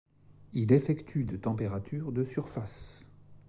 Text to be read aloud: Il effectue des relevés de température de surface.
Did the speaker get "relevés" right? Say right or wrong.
wrong